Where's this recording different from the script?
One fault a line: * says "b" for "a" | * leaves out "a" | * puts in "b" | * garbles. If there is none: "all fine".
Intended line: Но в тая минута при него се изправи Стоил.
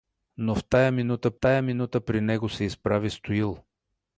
* puts in "тая минута"